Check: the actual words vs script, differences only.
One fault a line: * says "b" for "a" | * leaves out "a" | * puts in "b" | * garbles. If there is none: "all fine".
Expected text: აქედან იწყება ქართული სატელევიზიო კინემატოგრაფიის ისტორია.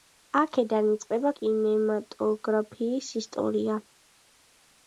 * leaves out "ქართული სატელევიზიო"